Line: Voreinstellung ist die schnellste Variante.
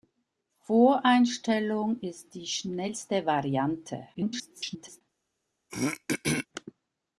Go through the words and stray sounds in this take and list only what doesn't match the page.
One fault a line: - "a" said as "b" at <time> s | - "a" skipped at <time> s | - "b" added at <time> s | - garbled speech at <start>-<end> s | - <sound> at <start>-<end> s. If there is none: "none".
- garbled speech at 4.1-5.0 s
- throat clearing at 5.7-6.5 s